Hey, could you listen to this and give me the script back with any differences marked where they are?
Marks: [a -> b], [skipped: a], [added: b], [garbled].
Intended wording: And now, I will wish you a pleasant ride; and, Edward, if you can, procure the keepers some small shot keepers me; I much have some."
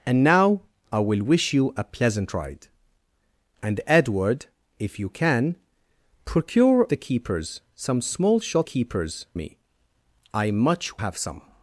And now, I will wish you a pleasant ride; and, Edward, if you can, procure the keepers some small shot keepers me; I much have some."